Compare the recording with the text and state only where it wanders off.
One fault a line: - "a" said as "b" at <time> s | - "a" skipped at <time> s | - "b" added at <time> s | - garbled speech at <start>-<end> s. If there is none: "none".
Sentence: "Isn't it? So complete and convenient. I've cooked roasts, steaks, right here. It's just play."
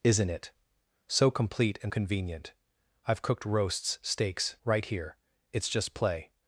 none